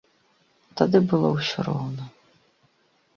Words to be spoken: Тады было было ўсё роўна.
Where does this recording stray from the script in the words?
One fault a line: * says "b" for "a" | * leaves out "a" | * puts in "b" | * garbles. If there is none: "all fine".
* leaves out "было"